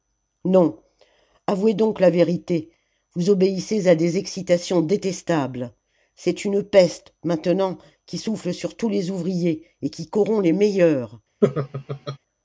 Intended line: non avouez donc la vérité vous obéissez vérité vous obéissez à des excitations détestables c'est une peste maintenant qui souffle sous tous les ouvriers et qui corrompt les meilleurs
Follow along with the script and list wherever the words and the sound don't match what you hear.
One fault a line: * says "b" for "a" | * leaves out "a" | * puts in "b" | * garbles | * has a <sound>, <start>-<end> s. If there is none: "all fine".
* leaves out "vérité vous obéissez"
* says "sur" for "sous"
* has a laugh, 11.4-12.2 s